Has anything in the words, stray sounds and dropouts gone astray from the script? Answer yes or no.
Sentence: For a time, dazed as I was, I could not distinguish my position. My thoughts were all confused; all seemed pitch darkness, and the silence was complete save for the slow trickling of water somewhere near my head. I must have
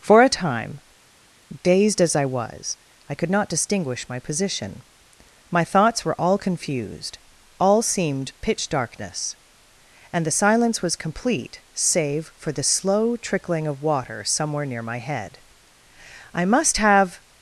no